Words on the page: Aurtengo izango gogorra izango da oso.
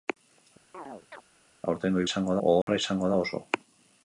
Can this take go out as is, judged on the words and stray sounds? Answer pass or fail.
fail